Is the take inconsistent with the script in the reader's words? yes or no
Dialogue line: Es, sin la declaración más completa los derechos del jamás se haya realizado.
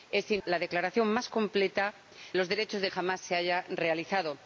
no